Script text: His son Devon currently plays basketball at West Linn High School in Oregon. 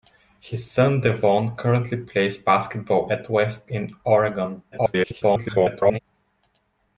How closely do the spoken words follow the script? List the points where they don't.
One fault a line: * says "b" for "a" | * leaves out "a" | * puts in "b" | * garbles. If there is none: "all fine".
* leaves out "Linn High School"
* garbles